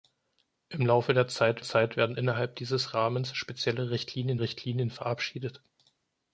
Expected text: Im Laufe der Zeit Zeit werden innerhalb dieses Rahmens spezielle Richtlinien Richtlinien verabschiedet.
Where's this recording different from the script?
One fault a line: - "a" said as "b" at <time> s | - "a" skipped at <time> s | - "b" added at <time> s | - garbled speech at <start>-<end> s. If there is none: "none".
none